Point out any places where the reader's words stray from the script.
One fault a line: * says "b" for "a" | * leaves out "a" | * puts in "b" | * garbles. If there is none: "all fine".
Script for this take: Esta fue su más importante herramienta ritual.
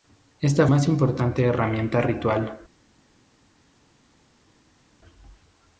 * leaves out "fue su"